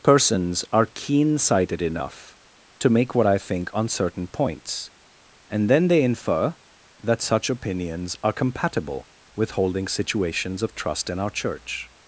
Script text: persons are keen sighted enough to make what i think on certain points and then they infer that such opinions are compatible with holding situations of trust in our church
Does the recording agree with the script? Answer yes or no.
yes